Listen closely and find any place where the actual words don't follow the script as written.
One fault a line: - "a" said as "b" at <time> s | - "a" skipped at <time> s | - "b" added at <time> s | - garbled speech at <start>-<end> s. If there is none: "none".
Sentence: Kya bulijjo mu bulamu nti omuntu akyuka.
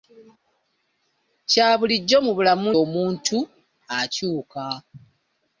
- "nti" skipped at 2.7 s